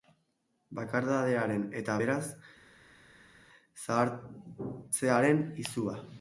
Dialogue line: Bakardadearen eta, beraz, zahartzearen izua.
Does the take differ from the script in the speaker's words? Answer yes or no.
no